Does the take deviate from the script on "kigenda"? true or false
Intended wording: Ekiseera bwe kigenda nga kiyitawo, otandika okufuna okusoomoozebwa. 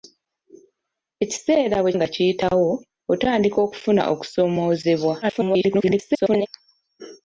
true